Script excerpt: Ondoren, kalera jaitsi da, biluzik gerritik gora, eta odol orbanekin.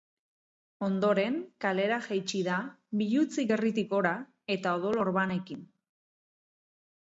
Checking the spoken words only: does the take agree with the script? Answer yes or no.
yes